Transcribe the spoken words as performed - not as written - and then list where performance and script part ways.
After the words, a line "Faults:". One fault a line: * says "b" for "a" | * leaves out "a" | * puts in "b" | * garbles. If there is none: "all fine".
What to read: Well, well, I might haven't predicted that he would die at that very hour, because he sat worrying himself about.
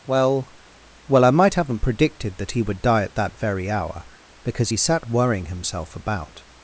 Well, well, I might haven't predicted that he would die at that very hour, because he sat worrying himself about.
Faults:
all fine